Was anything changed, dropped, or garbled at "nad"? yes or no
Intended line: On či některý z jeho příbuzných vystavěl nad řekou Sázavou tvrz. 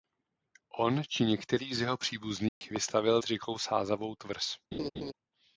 yes